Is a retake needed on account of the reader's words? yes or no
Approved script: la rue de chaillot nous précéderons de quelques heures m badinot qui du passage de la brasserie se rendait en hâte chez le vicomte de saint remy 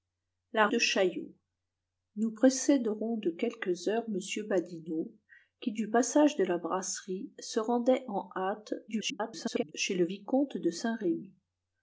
yes